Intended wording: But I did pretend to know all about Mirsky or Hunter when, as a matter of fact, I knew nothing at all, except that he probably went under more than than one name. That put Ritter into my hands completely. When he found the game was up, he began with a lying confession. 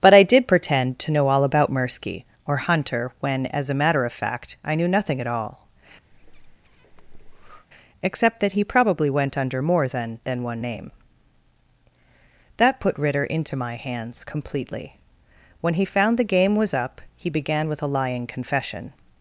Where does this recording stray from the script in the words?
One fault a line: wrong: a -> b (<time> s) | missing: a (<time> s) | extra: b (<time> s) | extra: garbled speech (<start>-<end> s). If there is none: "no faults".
no faults